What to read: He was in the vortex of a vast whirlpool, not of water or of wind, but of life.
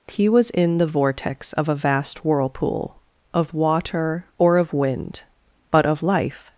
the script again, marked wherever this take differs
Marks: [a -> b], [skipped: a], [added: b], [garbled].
He was in the vortex of a vast whirlpool, [skipped: not] of water or of wind, but of life.